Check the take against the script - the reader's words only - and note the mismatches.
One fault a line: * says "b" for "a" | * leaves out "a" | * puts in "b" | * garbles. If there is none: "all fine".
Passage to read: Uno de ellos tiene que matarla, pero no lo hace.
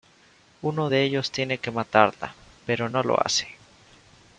all fine